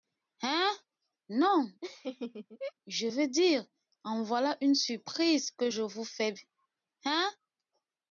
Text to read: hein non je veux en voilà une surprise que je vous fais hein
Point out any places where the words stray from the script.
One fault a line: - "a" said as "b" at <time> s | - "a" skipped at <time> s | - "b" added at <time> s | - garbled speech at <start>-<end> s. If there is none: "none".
- "dire" added at 3.3 s